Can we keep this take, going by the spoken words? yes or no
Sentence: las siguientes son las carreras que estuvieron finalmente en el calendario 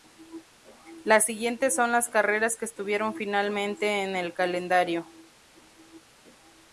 yes